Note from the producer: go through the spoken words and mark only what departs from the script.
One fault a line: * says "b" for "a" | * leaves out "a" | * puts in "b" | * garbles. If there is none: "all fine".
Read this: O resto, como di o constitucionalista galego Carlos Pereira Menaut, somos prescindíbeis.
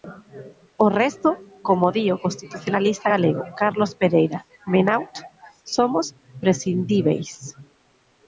all fine